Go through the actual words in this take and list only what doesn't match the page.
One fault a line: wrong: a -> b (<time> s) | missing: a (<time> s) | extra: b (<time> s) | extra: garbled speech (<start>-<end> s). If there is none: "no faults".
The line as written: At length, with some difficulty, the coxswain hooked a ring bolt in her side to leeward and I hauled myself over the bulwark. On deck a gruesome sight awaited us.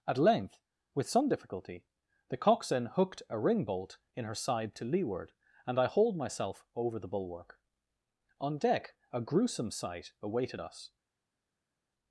no faults